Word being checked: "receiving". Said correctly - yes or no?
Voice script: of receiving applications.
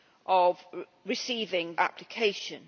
yes